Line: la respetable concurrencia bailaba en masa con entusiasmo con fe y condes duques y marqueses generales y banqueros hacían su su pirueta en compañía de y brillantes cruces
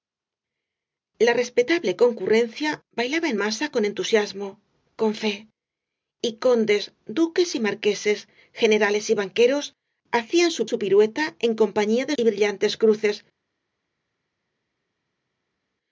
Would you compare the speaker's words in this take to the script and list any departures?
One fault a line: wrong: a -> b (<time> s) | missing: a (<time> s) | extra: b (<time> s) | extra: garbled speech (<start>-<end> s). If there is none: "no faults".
no faults